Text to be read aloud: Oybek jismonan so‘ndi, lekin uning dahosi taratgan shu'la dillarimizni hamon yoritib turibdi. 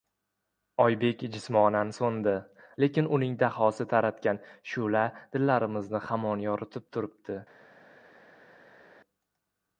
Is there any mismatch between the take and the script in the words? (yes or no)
no